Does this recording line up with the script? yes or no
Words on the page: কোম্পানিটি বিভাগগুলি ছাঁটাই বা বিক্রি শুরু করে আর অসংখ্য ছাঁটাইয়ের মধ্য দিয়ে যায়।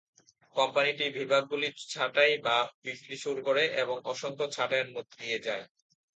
no